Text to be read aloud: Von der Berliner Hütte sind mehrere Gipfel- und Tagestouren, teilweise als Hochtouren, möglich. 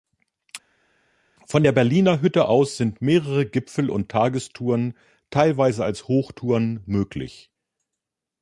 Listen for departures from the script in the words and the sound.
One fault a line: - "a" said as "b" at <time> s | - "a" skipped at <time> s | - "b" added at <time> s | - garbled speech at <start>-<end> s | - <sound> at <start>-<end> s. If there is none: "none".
- "aus" added at 2.5 s